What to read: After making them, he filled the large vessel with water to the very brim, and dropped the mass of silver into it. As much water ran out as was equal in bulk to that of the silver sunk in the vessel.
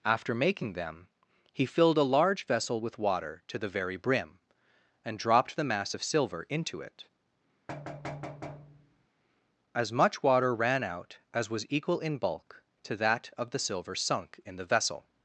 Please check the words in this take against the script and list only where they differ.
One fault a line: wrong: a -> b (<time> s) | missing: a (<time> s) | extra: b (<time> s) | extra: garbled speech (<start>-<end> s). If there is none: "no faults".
wrong: the -> a (2.0 s)